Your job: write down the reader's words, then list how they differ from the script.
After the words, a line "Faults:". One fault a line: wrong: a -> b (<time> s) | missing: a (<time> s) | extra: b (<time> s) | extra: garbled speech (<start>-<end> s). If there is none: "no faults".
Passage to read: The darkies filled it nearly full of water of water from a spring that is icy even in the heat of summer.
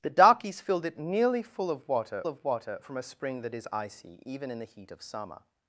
The darkies filled it nearly full of water of water from a spring that is icy even in the heat of summer.
Faults:
no faults